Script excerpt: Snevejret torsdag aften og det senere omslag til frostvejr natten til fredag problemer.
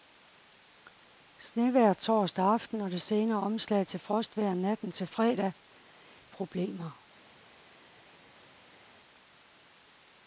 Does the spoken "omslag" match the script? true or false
true